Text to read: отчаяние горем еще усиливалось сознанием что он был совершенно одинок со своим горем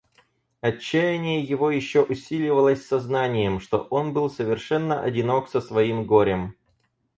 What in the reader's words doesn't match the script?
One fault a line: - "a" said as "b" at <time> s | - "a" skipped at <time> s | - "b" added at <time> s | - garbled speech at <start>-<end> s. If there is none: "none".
- "горем" said as "его" at 1.4 s